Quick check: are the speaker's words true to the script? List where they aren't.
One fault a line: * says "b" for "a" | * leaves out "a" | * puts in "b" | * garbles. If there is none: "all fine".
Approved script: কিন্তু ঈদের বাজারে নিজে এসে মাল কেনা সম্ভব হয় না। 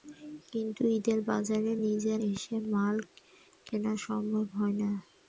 all fine